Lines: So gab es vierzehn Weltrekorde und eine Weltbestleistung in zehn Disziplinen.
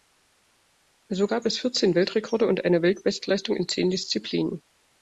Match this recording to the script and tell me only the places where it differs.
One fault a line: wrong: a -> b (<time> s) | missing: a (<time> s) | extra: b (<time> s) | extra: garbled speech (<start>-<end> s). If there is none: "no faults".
no faults